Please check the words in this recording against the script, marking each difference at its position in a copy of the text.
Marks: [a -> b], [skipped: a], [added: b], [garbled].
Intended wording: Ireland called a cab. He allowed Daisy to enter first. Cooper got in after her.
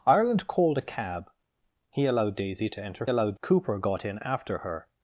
Ireland called a cab. He allowed Daisy to enter [first. -> allowed] Cooper got in after her.